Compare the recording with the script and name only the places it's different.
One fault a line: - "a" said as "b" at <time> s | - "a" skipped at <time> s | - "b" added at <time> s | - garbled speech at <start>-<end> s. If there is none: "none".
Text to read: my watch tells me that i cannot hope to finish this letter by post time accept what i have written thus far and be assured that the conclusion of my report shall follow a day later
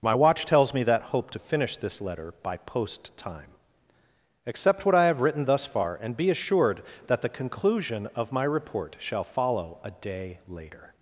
- "i cannot" skipped at 1.0 s